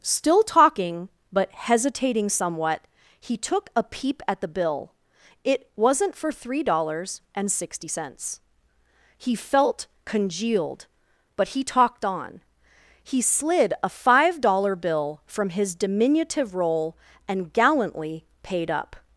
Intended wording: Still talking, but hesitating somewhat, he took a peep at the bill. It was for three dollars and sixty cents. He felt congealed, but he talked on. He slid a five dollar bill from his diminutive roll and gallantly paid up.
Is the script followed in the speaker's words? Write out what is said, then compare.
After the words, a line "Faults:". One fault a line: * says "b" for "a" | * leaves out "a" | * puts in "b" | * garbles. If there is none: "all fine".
Still talking, but hesitating somewhat, he took a peep at the bill. It wasn't for three dollars and sixty cents. He felt congealed, but he talked on. He slid a five dollar bill from his diminutive roll and gallantly paid up.
Faults:
* says "wasn't" for "was"